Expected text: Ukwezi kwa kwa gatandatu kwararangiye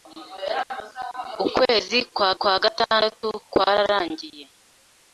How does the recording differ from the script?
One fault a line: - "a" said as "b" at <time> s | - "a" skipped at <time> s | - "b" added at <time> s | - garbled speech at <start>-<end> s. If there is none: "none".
none